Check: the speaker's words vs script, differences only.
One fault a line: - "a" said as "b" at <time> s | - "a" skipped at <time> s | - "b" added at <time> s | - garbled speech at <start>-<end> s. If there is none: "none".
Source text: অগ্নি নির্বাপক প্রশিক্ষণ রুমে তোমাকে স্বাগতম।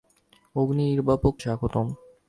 - "প্রশিক্ষণ রুমে তোমাকে" skipped at 1.3 s